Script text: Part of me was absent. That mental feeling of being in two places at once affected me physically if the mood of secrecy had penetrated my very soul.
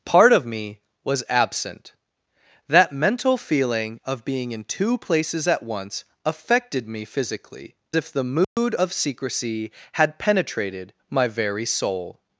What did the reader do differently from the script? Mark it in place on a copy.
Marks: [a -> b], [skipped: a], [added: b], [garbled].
Part of me was absent. That mental feeling of being in two places at once affected me physically if the mood of secrecy had penetrated my very soul.